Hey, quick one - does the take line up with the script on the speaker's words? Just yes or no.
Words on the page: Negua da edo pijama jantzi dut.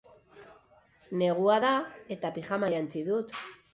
no